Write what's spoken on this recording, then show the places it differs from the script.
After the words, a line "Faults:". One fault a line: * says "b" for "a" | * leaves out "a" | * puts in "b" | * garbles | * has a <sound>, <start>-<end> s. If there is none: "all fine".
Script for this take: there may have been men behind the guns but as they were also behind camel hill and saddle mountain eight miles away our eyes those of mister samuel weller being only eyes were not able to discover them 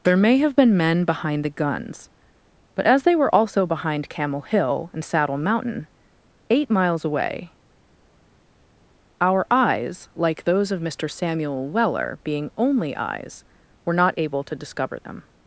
there may have been men behind the guns but as they were also behind camel hill and saddle mountain eight miles away our eyes like those of mister samuel weller being only eyes were not able to discover them
Faults:
* puts in "like"